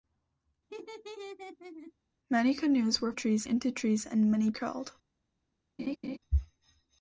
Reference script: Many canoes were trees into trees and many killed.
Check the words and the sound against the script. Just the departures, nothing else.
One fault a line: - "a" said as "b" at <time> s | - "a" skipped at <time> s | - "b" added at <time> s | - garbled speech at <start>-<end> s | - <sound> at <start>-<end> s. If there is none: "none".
- laugh at 0.7-1.9 s
- laugh at 5.8-6.2 s